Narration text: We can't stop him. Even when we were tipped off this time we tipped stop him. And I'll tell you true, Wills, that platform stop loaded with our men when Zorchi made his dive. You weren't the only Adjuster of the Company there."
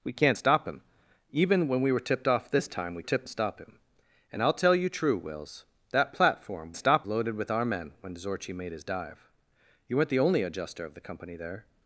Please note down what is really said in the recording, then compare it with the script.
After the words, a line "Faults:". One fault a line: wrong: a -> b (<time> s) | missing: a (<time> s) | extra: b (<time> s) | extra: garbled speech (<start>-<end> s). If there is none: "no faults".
We can't stop him. Even when we were tipped off this time we tipped stop him. And I'll tell you true, Wills, that platform stop loaded with our men when Zorchi made his dive. You weren't the only Adjuster of the Company there."
Faults:
no faults